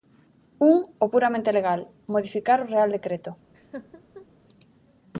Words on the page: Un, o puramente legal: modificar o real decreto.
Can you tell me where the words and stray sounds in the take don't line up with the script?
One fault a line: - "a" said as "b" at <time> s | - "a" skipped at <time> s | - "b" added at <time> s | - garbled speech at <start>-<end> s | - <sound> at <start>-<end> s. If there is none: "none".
- laugh at 3.5-4.3 s